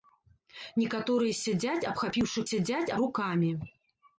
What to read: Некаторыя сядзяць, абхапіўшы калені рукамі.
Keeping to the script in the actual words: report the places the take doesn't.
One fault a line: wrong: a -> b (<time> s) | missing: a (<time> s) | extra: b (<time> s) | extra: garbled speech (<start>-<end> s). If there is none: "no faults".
wrong: калені -> сядзяць (2.5 s)